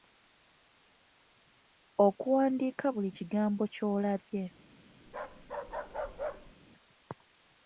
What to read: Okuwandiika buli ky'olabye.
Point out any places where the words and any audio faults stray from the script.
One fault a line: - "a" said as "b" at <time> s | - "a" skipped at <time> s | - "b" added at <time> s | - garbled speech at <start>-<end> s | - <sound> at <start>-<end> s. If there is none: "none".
- "kigambo" added at 3.2 s
- bark at 5.1-6.5 s